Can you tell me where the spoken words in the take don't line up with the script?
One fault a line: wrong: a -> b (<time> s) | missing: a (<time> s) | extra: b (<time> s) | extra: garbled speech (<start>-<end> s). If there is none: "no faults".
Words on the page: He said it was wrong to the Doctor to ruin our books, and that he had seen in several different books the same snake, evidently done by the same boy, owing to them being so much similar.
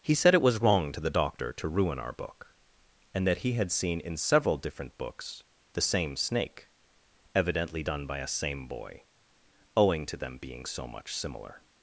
wrong: books -> book (2.1 s)
wrong: the -> a (8.2 s)